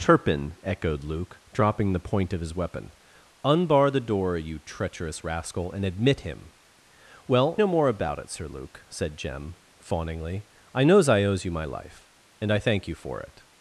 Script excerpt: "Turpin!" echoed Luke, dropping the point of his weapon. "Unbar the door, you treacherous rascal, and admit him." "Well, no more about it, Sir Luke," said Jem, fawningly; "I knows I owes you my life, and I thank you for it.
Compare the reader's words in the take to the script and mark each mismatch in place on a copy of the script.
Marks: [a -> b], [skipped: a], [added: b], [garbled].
"Turpin!" echoed Luke, dropping the point of his weapon. "Unbar the door, you treacherous rascal, and admit him." "Well, no more about it, Sir Luke," said Jem, fawningly; "I knows I owes you my life, and I thank you for it.